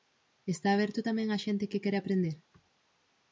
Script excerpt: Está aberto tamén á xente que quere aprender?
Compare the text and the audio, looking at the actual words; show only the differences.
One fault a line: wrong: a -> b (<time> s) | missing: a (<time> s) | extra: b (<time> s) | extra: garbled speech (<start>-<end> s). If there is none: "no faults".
no faults